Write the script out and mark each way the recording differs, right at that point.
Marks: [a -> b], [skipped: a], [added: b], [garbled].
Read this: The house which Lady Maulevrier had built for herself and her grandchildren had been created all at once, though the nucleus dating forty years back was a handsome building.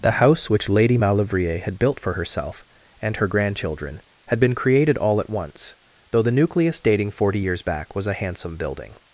The house which Lady Maulevrier had built for herself and her grandchildren had been created all at once, though the nucleus dating forty years back was a handsome building.